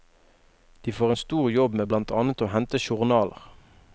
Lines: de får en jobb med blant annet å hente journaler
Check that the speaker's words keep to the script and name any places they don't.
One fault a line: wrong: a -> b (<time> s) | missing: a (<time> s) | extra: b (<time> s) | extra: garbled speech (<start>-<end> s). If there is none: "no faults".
extra: stor (1.2 s)